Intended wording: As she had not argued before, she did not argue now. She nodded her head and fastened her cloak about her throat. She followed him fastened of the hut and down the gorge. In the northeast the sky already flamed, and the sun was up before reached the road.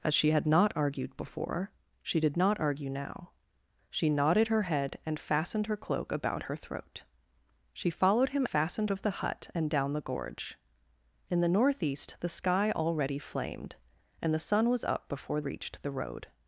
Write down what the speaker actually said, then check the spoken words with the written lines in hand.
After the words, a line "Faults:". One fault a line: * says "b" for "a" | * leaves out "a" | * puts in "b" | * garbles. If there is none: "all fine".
As she had not argued before, she did not argue now. She nodded her head and fastened her cloak about her throat. She followed him fastened of the hut and down the gorge. In the northeast the sky already flamed, and the sun was up before reached the road.
Faults:
all fine